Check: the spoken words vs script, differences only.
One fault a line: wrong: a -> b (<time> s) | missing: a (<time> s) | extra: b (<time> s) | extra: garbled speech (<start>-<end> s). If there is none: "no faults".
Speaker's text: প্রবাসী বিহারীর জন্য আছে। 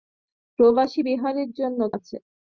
no faults